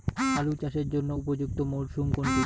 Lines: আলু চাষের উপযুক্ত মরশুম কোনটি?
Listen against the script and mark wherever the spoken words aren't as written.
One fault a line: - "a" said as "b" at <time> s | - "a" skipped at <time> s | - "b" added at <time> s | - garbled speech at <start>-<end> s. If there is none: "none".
- "জন্য" added at 0.9 s